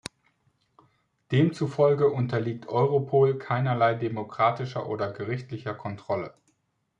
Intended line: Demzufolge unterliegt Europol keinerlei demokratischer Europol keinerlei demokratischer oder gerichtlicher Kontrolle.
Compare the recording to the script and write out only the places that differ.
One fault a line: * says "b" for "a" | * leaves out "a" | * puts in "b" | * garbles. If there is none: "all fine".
* leaves out "Europol keinerlei demokratischer"